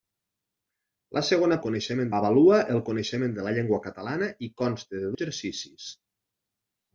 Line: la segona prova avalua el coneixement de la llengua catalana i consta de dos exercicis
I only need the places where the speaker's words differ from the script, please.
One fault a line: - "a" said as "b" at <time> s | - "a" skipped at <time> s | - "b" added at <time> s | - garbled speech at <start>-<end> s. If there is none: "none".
- "prova" said as "coneixement" at 1.7 s
- "dos" skipped at 5.1 s